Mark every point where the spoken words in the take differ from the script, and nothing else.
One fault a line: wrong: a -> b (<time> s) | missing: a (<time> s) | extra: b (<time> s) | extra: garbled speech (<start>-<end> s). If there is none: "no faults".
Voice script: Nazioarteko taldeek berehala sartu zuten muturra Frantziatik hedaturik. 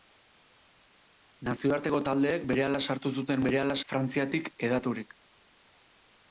wrong: muturra -> berehala (3.5 s)